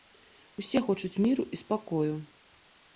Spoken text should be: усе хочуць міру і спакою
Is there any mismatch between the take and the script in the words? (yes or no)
no